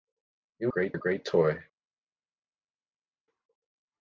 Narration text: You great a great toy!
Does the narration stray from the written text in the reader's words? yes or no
no